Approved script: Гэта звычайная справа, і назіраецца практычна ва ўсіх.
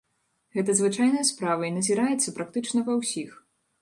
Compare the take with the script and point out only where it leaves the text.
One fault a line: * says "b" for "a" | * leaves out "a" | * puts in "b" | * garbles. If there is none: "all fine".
all fine